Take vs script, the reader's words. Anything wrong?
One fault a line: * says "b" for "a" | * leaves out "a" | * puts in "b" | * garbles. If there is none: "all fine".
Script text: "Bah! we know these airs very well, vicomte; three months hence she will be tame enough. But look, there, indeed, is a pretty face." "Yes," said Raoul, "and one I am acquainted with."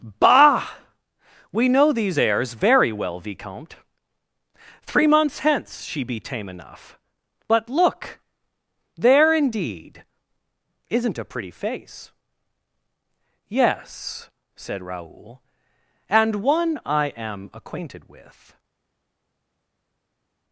* leaves out "will"
* says "isn't" for "is"